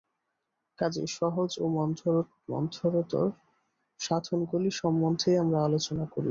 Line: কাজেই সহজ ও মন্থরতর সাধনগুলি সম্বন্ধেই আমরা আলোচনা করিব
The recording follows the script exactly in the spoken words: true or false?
true